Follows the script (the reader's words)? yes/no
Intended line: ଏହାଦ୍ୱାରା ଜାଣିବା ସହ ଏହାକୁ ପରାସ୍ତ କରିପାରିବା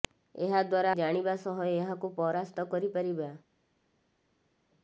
yes